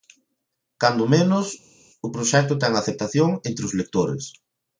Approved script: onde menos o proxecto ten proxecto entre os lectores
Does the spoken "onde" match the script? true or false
false